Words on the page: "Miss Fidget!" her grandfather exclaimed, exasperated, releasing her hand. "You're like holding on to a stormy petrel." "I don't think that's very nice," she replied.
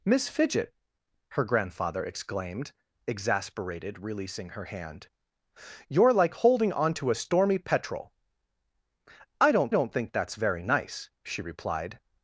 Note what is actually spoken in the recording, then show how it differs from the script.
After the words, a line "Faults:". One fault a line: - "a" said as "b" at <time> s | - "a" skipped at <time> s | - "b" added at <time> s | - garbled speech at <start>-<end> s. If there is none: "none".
"Miss Fidget!" her grandfather exclaimed, exasperated, releasing her hand. "You're like holding on to a stormy petrel." "I don't don't think that's very nice," she replied.
Faults:
- "don't" added at 9.7 s